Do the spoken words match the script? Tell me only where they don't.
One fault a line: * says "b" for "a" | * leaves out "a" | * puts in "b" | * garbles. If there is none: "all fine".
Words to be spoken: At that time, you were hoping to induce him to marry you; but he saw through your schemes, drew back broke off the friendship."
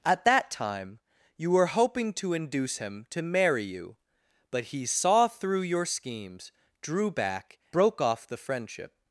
all fine